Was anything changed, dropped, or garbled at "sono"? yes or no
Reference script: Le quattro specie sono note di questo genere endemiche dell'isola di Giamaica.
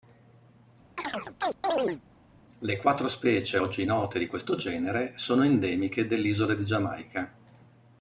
yes